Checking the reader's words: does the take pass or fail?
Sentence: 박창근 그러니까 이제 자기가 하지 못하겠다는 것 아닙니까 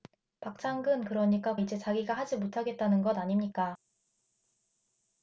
pass